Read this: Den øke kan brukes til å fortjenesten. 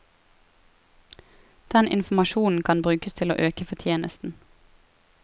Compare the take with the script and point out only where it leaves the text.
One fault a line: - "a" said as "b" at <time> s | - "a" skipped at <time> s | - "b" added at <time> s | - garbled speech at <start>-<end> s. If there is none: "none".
- "øke" said as "informasjonen" at 1.9 s
- "øke" added at 3.4 s